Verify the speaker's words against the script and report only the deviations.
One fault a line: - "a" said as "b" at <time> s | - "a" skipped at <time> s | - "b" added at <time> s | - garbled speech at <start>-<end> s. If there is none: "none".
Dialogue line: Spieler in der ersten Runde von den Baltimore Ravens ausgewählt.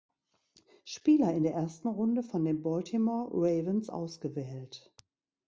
none